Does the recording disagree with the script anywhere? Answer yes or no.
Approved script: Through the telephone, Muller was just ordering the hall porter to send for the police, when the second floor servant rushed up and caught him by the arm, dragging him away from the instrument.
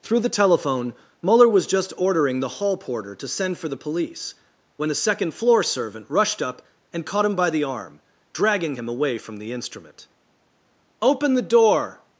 yes